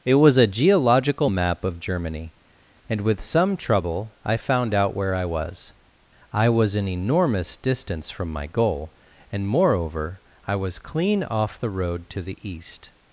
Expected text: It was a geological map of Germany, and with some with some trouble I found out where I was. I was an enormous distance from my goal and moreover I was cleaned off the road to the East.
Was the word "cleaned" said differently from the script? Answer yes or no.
yes